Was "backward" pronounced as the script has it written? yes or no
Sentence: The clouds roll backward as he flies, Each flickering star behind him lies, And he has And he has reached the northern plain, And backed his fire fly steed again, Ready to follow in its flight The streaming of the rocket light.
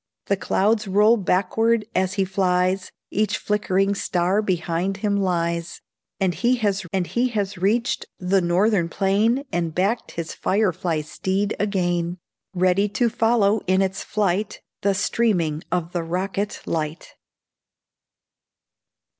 yes